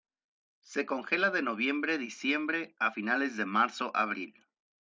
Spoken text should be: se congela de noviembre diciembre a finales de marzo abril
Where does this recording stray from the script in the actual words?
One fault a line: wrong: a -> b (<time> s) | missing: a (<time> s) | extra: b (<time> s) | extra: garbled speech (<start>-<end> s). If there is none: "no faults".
no faults